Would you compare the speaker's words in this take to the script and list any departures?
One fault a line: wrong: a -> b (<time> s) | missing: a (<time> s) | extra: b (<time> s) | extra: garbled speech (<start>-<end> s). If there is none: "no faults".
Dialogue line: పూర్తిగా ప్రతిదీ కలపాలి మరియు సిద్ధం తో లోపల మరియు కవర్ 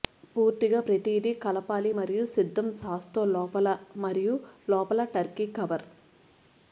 extra: సాస్ (2.8 s)
extra: లోపల టర్కీ (4.7 s)